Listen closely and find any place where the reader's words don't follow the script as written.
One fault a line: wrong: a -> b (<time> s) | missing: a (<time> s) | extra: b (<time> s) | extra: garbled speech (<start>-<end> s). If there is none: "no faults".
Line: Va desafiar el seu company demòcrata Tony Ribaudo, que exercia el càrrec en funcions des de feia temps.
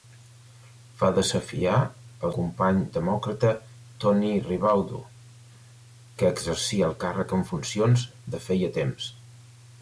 missing: seu (2.3 s)
missing: des (8.0 s)